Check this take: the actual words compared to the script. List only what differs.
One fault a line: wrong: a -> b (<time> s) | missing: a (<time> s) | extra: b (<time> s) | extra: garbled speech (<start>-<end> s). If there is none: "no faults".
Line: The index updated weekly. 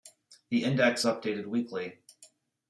no faults